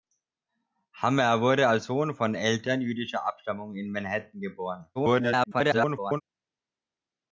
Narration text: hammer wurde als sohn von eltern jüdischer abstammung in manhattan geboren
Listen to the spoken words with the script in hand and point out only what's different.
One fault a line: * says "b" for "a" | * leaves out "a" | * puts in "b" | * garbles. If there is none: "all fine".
* garbles